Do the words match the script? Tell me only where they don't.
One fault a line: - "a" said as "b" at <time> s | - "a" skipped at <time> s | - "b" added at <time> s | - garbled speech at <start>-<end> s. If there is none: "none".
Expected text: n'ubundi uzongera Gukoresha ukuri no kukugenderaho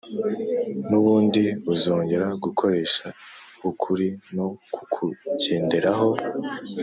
none